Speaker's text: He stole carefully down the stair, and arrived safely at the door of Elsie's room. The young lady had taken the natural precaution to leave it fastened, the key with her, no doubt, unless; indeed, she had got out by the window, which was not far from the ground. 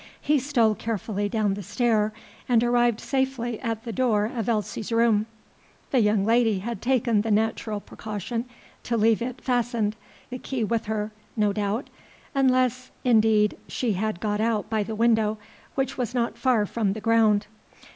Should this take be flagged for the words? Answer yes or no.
no